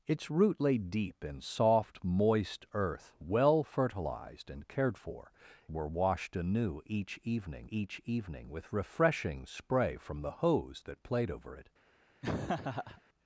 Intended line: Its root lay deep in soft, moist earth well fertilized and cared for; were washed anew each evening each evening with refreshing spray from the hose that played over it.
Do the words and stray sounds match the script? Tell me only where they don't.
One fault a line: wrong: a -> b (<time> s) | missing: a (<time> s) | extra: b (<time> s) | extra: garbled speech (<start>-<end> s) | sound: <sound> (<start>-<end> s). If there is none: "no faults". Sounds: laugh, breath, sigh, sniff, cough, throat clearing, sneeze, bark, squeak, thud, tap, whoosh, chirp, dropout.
sound: laugh (12.2-13.0 s)